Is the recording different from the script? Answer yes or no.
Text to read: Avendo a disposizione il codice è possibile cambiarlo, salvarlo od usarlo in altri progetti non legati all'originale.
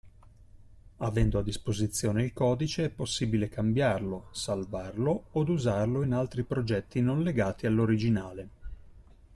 no